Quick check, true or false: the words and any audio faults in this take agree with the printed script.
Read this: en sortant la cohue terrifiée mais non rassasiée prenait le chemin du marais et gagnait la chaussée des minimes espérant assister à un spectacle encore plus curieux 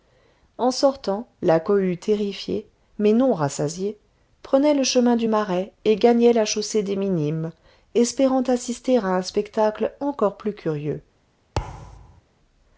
false